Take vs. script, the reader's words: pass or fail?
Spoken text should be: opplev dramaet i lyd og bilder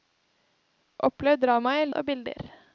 fail